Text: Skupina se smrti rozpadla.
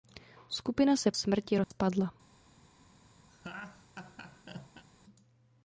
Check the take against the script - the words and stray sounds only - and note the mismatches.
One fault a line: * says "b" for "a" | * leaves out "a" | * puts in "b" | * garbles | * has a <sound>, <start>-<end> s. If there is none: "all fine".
* has a dropout, 1.6-1.7 s
* has a laugh, 3.3-4.8 s